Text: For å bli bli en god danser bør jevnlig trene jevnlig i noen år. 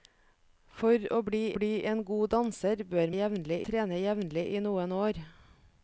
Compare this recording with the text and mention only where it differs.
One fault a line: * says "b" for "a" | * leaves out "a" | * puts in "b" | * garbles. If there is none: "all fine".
all fine